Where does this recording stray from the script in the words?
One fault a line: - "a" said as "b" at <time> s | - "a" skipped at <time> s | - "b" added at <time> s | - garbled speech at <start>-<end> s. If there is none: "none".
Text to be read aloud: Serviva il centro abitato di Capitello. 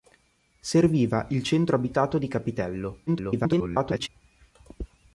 - garbled speech at 3.1-4.1 s